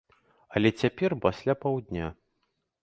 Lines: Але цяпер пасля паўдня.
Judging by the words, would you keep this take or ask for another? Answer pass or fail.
pass